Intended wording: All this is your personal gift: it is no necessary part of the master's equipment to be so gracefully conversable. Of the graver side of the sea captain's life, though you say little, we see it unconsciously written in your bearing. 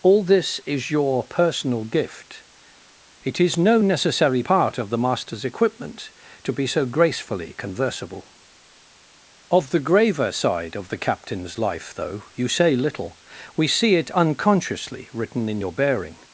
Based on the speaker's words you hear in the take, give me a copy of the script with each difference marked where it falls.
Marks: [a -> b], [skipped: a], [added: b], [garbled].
All this is your personal gift: it is no necessary part of the master's equipment to be so gracefully conversable. Of the graver side of the [skipped: sea] captain's life, though you say little, we see it unconsciously written in your bearing.